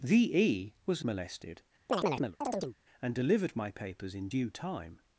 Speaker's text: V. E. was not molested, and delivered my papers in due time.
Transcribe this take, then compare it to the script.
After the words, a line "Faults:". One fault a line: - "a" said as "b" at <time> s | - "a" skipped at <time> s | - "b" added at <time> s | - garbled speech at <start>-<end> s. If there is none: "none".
V. E. was molested, and delivered my papers in due time.
Faults:
- "not" skipped at 1.1 s